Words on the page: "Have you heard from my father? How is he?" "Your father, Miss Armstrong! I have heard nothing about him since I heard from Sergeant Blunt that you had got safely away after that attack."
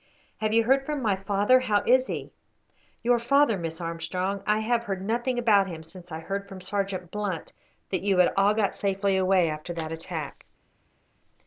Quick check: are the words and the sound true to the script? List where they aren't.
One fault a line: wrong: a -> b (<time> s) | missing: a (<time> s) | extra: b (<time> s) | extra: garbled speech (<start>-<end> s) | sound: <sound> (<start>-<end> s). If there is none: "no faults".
extra: all (8.3 s)